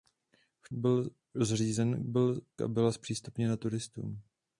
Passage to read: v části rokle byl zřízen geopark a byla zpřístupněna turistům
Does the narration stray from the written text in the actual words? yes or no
yes